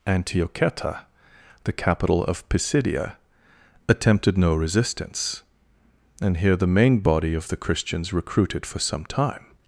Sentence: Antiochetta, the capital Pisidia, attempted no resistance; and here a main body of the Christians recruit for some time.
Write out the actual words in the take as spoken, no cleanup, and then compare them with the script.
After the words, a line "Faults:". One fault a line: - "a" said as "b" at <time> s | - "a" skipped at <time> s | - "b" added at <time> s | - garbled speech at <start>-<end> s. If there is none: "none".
Antiochetta, the capital of Pisidia, attempted no resistance; and here the main body of the Christians recruited for some time.
Faults:
- "of" added at 2.2 s
- "a" said as "the" at 6.5 s
- "recruit" said as "recruited" at 8.1 s